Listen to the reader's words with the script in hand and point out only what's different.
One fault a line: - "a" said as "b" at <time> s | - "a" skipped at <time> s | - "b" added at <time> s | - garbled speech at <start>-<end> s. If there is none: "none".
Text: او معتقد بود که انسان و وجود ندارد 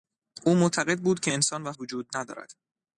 none